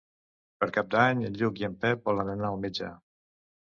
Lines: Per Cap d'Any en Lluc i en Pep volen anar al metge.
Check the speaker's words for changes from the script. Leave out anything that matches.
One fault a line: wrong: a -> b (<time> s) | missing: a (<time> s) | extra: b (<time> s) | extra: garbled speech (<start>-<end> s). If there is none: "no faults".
no faults